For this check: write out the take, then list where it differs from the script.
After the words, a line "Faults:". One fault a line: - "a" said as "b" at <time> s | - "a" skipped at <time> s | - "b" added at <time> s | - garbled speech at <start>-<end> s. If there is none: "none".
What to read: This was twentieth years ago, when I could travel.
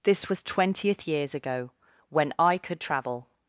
This was twentieth years ago, when I could travel.
Faults:
none